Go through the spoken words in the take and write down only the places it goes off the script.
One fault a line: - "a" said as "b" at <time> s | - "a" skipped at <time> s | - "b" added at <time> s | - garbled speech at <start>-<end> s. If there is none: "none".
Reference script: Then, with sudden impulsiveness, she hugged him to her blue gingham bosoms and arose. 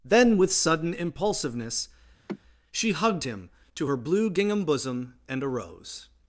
- "bosoms" said as "bosom" at 4.6 s